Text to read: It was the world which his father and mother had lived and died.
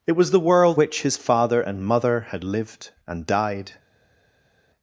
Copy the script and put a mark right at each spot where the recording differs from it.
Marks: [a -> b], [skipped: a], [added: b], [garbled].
It was the world which his father and mother had lived and died.